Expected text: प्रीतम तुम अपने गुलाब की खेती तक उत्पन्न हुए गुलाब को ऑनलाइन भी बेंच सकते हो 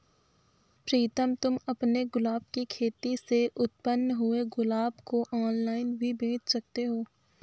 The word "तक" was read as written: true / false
false